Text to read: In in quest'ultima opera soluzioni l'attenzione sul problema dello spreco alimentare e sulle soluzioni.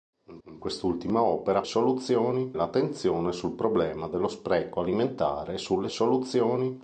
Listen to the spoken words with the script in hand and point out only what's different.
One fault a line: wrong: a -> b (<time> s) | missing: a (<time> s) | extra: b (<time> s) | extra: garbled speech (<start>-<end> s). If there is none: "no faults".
no faults